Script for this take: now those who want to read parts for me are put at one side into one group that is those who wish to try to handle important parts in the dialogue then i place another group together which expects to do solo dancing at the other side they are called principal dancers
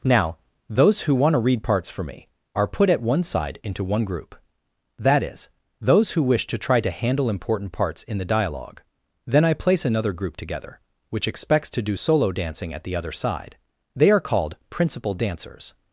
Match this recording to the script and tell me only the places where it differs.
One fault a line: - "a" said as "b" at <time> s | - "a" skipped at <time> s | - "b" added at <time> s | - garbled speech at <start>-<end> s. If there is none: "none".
none